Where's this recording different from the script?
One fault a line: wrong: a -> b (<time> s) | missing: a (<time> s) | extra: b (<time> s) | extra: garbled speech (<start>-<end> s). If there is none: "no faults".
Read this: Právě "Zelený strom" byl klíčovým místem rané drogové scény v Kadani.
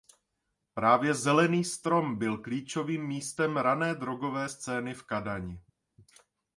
no faults